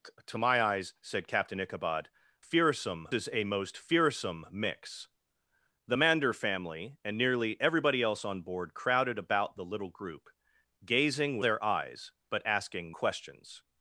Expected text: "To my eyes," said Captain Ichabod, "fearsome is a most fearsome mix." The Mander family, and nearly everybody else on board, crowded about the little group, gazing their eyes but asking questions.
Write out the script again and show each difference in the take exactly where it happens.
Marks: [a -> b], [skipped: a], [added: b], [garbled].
"To my eyes," said Captain Ichabod, "fearsome is a most fearsome mix." The Mander family, and nearly everybody else on board, crowded about the little group, gazing their eyes but asking questions.